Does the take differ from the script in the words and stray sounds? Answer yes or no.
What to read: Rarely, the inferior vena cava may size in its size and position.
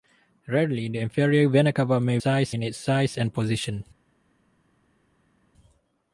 no